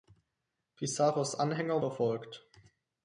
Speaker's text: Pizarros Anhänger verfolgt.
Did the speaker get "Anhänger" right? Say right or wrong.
right